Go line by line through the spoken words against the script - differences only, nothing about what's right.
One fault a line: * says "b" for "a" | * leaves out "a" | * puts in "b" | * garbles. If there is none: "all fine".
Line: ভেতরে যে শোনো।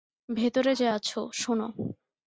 * puts in "আছো"